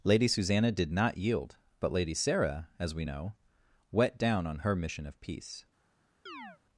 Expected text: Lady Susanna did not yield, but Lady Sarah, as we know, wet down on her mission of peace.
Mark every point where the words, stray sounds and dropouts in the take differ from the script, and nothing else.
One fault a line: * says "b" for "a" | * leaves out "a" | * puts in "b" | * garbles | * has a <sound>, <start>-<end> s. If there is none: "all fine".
* has a chirp, 6.3-6.6 s